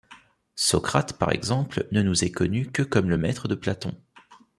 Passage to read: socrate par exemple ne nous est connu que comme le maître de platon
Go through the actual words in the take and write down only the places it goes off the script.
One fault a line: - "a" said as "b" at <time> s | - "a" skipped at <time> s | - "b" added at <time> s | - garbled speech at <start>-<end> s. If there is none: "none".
none